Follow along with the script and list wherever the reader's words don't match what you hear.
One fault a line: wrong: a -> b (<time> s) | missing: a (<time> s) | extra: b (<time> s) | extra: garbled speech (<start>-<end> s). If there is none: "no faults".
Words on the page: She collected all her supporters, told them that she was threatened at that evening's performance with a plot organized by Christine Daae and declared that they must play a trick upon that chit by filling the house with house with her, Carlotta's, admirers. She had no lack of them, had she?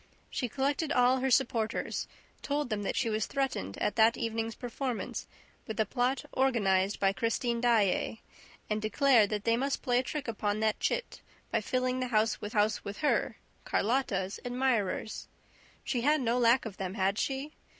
no faults